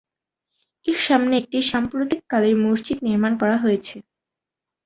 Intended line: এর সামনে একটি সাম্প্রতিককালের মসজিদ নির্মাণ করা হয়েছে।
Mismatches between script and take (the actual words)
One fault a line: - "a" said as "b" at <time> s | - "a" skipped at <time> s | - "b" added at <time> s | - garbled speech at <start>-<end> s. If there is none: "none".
none